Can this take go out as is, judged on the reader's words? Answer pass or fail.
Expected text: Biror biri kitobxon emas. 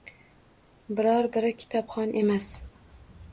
pass